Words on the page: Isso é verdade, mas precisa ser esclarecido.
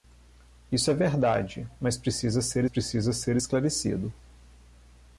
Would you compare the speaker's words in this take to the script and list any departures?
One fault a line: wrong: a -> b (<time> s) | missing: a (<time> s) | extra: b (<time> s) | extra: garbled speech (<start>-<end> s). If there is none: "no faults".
extra: precisa ser (2.6 s)